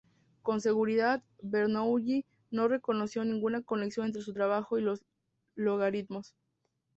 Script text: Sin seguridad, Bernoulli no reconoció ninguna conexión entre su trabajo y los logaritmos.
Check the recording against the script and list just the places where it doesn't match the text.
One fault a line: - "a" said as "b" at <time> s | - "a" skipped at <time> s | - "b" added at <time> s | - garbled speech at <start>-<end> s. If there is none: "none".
- "Sin" said as "Con" at 0.4 s